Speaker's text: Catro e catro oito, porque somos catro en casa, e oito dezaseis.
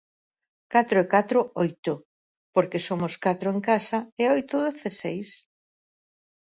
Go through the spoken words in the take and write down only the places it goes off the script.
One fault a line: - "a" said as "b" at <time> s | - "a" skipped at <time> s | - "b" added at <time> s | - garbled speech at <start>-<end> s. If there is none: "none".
none